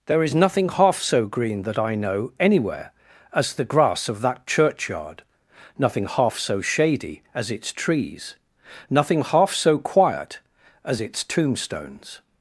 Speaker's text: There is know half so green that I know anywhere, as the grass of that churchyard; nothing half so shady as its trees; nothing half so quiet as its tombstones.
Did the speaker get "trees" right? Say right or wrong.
right